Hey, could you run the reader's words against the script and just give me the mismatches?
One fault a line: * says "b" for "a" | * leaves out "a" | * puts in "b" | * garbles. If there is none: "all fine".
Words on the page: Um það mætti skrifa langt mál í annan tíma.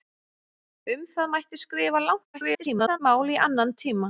* garbles